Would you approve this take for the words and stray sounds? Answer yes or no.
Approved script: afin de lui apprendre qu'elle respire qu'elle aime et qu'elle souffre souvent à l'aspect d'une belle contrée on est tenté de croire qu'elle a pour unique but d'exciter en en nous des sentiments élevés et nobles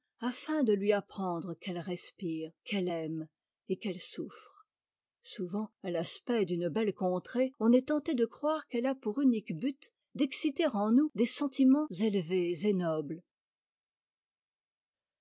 no